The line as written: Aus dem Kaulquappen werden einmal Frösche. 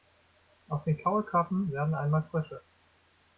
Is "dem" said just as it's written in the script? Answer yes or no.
no